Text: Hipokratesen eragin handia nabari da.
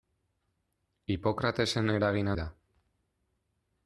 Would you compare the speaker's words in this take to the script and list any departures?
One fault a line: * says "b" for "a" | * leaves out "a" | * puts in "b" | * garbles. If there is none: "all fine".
* leaves out "handia nabari"